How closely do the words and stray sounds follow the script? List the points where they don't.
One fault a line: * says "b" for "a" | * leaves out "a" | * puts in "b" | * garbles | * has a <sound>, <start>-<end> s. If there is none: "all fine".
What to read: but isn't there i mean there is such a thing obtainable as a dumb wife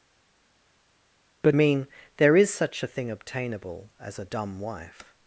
* leaves out "isn't there i"